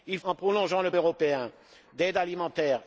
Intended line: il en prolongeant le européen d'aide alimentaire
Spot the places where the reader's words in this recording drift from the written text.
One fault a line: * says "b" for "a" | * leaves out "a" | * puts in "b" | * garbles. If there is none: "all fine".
all fine